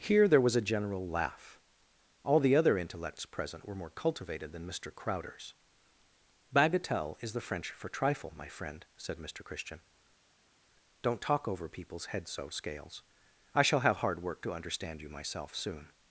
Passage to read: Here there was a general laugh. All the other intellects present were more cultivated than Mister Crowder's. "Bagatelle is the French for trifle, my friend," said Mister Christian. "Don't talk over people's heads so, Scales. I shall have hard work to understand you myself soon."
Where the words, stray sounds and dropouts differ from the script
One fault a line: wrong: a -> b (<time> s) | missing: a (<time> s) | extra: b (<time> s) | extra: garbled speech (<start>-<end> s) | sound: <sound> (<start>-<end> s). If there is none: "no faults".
no faults